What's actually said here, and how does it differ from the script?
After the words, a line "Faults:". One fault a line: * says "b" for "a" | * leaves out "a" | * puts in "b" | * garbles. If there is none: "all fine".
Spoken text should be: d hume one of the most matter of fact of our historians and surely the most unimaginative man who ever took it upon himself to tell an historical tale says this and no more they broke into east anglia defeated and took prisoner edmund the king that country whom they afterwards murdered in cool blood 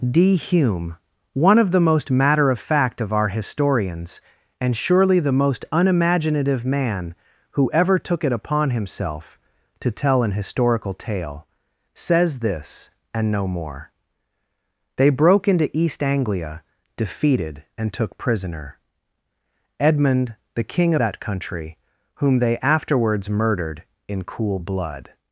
d hume one of the most matter of fact of our historians and surely the most unimaginative man who ever took it upon himself to tell an historical tale says this and no more they broke into east anglia defeated and took prisoner edmund the king that country whom they afterwards murdered in cool blood
Faults:
all fine